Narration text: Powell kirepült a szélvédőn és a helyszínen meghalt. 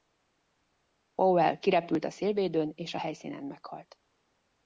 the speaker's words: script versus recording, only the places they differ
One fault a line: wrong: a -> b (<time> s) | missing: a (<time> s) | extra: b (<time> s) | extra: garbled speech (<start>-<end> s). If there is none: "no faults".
no faults